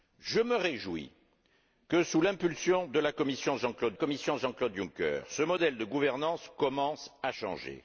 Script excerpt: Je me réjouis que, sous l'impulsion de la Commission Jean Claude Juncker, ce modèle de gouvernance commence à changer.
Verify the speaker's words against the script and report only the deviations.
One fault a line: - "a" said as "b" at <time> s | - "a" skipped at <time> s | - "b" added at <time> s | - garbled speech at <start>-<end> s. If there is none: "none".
- "Commission Jean Claude" added at 3.9 s